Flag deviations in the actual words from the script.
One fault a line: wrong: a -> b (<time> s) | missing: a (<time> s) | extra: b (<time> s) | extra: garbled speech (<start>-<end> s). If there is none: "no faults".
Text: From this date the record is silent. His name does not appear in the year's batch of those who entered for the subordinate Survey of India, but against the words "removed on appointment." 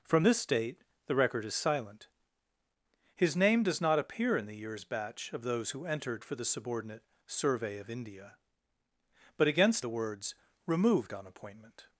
no faults